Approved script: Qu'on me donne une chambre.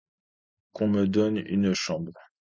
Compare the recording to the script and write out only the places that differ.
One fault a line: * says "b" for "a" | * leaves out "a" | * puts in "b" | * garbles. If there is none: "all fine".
all fine